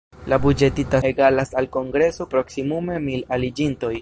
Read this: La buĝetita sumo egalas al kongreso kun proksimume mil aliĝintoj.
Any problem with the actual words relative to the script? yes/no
yes